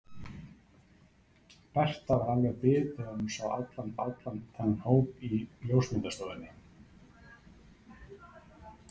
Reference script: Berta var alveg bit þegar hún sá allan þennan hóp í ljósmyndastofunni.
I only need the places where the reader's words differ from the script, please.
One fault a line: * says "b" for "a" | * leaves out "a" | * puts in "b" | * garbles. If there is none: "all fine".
* puts in "allan"